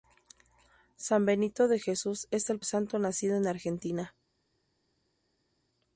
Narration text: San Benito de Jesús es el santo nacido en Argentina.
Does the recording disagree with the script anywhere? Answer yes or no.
no